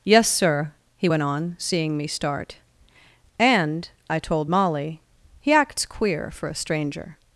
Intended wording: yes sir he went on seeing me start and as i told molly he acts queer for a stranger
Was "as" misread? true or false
true